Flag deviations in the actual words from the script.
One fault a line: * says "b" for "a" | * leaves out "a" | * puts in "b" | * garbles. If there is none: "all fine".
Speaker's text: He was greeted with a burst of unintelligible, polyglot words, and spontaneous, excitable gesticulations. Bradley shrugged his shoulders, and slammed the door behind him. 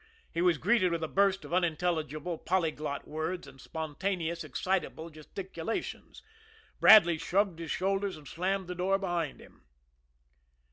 all fine